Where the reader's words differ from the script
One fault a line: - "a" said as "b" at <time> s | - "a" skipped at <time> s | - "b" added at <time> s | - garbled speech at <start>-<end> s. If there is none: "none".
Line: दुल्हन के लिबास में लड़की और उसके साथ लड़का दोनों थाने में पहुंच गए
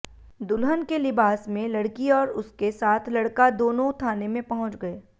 none